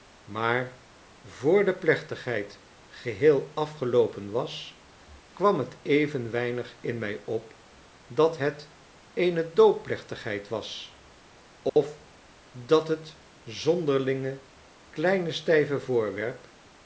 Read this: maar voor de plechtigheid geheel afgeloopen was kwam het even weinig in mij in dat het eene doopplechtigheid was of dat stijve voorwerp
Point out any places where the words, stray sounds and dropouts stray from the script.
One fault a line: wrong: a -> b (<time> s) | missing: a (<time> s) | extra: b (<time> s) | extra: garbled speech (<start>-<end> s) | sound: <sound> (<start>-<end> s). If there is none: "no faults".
wrong: in -> op (7.2 s)
sound: dropout (11.7-11.8 s)
extra: het zonderlinge kleine (12.9 s)